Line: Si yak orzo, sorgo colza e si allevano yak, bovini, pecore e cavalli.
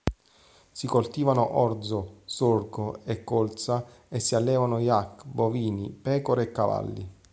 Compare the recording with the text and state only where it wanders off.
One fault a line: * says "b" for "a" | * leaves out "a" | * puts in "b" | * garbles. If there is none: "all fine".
* says "coltivano" for "yak"
* puts in "e"